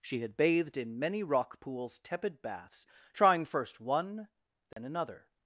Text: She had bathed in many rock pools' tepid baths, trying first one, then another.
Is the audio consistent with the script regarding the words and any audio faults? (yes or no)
no